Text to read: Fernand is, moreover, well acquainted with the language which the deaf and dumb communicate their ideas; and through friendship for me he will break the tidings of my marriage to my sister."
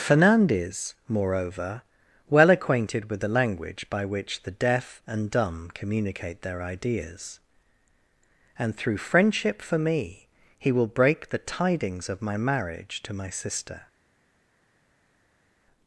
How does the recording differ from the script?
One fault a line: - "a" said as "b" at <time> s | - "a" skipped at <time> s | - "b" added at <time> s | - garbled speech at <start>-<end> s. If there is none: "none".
- "by" added at 3.9 s